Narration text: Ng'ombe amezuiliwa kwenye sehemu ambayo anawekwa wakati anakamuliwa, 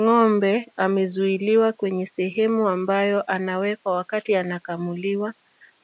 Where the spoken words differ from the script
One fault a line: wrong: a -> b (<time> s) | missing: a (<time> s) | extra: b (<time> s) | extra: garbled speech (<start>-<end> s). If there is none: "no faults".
no faults